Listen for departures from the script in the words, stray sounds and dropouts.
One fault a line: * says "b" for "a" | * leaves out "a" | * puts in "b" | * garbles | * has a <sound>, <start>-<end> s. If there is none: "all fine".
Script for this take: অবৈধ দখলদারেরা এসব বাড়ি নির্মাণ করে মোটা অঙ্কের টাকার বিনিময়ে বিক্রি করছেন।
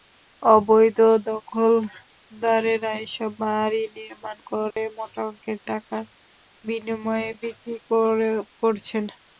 * has a dropout, 4.7-4.8 s